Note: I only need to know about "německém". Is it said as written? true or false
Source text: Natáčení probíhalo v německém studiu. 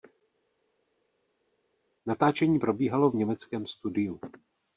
true